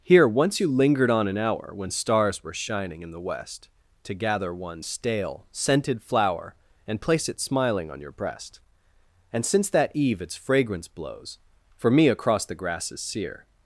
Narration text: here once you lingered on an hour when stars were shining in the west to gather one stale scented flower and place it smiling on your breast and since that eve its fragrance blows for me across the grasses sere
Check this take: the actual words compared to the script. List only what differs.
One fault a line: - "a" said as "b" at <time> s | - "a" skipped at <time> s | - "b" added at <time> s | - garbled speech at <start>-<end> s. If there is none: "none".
none